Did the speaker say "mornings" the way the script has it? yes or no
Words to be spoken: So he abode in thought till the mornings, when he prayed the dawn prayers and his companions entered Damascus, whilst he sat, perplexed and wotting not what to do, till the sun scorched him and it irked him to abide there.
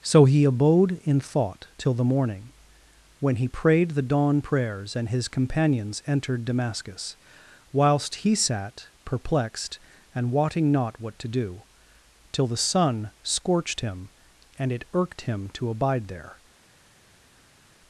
no